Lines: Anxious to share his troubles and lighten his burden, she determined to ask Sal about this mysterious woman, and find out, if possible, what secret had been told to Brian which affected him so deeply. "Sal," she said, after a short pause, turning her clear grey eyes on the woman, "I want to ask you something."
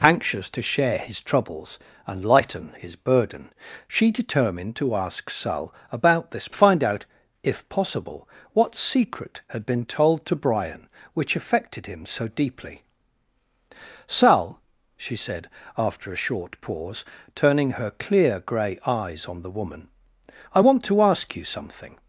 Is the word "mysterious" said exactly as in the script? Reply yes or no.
no